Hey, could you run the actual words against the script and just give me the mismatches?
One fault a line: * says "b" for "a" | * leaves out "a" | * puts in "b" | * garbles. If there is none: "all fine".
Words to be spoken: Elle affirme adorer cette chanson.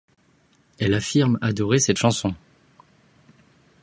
all fine